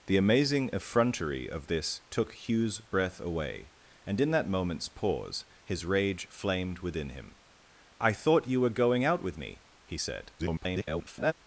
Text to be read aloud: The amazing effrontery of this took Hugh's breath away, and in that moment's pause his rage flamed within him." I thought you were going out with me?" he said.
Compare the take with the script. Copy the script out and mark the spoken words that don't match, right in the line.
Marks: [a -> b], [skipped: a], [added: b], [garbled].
The amazing effrontery of this took Hugh's breath away, and in that moment's pause his rage flamed within him." I thought you were going out with me?" he said. [garbled]